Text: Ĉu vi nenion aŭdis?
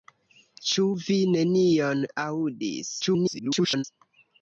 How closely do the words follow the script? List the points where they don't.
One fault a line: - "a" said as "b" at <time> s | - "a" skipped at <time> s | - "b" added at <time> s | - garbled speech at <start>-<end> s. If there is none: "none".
- garbled speech at 3.0-3.8 s